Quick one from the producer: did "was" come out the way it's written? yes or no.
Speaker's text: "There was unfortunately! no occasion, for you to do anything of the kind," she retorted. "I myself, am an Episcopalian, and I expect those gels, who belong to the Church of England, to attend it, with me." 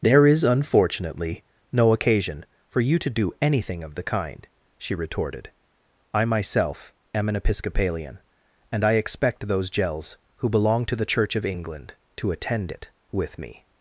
no